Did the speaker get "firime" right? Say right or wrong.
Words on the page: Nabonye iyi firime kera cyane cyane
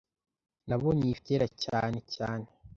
wrong